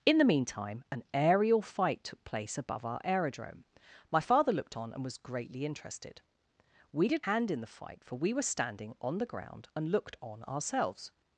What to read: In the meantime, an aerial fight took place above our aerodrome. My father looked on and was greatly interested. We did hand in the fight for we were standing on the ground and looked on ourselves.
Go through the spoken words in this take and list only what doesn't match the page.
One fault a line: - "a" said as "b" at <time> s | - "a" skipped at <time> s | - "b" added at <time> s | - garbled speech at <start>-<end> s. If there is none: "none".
none